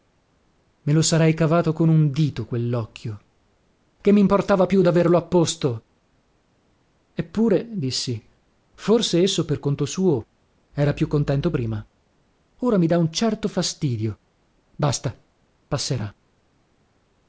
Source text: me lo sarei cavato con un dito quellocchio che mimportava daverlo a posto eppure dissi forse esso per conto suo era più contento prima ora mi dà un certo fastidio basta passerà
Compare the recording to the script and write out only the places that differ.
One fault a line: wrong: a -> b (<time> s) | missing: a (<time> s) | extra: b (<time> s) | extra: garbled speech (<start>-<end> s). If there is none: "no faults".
extra: più (4.7 s)